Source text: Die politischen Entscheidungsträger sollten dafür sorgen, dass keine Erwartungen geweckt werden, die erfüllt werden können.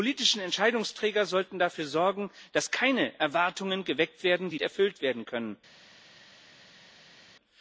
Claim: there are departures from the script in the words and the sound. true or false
false